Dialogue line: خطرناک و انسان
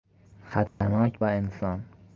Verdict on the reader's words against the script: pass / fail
pass